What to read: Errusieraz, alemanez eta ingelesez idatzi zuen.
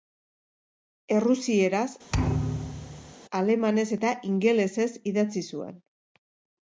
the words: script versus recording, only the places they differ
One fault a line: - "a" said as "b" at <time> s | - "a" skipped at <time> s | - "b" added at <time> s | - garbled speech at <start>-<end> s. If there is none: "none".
none